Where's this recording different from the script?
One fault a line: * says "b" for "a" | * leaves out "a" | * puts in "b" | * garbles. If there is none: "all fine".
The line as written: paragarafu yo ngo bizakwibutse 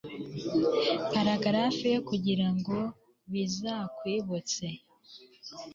* puts in "kugira"